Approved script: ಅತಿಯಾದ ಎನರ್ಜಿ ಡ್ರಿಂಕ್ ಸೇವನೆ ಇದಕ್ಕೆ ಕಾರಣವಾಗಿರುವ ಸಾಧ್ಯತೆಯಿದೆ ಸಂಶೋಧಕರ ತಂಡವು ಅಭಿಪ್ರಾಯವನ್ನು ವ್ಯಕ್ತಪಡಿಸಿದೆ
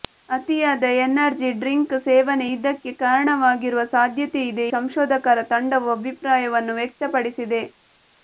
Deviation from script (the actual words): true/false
false